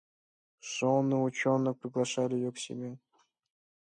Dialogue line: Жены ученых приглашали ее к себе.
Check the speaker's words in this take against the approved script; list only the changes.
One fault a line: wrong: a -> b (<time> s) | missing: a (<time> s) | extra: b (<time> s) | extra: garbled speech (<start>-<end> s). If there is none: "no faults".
no faults